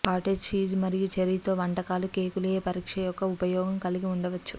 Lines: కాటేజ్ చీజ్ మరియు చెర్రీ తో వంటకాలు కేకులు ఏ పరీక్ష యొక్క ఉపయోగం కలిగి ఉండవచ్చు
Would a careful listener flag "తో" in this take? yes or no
no